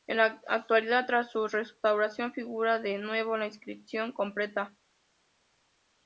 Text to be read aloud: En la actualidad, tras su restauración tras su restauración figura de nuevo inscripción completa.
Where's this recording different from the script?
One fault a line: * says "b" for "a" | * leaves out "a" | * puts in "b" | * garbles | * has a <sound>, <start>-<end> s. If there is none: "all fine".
* leaves out "tras su restauración"
* puts in "la"